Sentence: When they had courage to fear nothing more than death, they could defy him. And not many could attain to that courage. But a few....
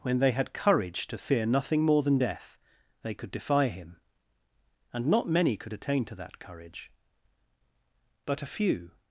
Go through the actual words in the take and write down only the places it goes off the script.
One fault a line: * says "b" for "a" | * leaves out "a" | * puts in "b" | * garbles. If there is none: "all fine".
all fine